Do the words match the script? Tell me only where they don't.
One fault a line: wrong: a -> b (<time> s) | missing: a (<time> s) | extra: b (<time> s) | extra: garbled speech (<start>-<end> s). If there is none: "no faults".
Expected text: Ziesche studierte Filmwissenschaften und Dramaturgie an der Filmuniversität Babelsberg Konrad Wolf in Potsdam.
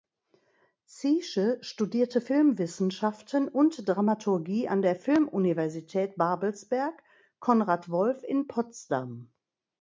no faults